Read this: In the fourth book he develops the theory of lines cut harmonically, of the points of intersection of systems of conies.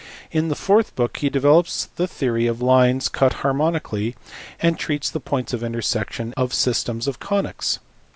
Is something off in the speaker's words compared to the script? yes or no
yes